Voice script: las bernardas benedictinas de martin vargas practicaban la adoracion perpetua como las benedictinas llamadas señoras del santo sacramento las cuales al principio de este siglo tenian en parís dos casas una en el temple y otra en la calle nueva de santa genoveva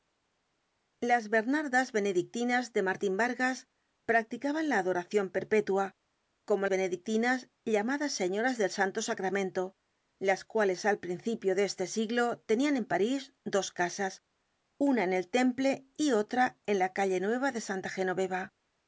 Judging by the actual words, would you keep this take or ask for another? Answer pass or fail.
fail